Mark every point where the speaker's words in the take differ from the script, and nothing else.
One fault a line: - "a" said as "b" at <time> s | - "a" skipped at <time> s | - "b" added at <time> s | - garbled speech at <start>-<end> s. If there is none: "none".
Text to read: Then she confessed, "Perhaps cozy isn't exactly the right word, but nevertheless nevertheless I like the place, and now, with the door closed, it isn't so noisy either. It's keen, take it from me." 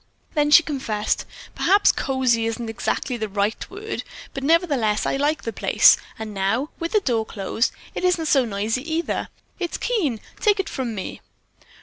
- "nevertheless" skipped at 5.0 s